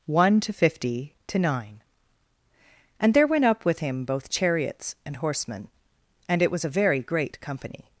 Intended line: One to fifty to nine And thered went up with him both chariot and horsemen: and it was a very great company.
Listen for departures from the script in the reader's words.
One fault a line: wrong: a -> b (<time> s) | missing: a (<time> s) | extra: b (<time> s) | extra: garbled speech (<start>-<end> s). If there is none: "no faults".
wrong: thered -> there (3.1 s)
wrong: chariot -> chariots (4.3 s)